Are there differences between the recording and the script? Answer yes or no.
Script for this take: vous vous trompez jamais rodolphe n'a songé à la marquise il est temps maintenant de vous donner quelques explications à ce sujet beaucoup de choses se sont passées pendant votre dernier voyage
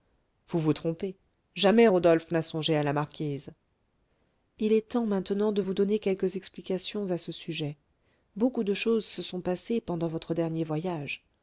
no